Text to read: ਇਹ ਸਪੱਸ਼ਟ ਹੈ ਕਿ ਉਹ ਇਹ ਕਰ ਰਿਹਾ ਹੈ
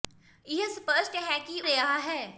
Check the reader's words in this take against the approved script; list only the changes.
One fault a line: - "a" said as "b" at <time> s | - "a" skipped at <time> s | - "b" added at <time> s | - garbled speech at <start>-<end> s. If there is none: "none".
- "ਉਹ ਇਹ ਕਰ" skipped at 1.6 s